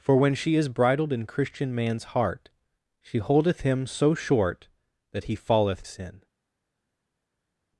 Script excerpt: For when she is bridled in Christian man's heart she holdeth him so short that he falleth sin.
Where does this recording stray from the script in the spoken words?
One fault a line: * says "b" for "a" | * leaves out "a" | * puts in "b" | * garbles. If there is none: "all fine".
all fine